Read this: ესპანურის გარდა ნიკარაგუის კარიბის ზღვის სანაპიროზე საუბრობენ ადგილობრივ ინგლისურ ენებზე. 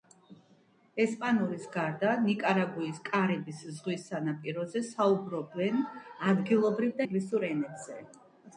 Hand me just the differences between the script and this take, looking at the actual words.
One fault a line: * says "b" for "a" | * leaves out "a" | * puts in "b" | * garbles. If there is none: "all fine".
all fine